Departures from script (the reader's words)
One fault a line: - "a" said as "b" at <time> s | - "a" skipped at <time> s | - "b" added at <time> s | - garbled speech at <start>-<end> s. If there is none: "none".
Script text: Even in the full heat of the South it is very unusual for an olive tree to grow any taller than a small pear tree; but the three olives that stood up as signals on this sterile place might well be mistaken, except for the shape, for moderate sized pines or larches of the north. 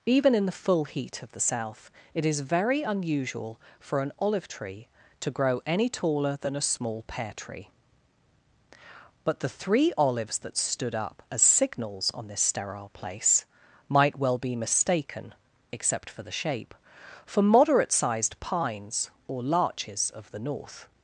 none